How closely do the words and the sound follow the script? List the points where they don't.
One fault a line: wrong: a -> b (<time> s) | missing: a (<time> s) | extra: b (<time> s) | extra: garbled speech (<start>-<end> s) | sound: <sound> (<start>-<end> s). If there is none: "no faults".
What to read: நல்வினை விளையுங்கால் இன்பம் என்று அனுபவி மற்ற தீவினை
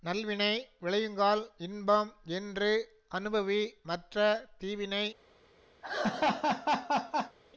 sound: laugh (5.8-7.4 s)